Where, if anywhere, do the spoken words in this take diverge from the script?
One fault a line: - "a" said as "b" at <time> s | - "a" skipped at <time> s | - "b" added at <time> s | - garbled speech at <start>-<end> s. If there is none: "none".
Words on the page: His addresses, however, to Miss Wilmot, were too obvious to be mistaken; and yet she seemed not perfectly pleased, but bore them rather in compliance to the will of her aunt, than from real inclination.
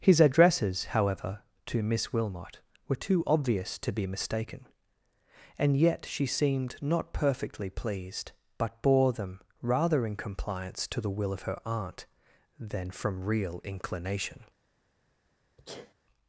none